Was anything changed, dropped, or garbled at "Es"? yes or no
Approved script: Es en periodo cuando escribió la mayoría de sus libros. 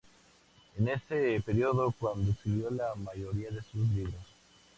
no